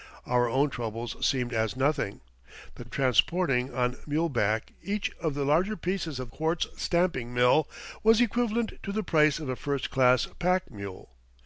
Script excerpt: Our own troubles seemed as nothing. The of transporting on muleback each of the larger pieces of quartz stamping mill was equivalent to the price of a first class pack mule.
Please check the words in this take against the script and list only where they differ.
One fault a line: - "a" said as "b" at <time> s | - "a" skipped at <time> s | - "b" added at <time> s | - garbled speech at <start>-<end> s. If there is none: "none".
none